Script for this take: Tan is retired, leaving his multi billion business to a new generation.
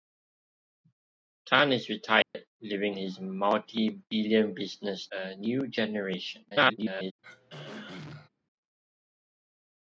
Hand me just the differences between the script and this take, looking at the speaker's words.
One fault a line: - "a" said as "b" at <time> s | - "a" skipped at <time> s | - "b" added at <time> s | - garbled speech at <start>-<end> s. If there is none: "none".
- "to" skipped at 5.0 s
- garbled speech at 6.5-7.1 s